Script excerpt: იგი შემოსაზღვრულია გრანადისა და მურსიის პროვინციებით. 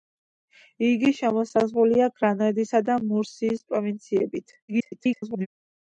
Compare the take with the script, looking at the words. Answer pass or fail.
fail